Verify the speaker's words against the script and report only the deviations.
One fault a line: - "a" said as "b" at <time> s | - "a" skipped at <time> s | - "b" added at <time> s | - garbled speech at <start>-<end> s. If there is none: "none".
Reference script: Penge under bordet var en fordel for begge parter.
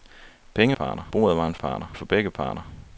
- "under" said as "parter" at 0.7 s
- "fordel" said as "parter" at 1.5 s